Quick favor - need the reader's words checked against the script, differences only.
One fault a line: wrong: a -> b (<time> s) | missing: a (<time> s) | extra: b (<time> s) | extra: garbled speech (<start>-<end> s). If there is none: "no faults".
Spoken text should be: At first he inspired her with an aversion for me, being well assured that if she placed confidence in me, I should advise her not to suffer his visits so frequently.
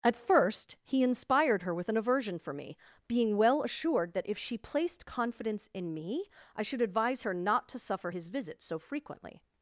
no faults